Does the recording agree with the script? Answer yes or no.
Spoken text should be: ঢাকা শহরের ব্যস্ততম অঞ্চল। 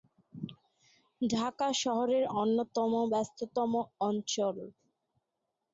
no